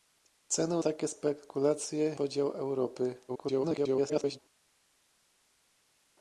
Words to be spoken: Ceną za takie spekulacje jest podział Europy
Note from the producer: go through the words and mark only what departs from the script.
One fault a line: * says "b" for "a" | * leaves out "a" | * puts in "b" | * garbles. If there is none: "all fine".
* leaves out "za"
* leaves out "jest"
* garbles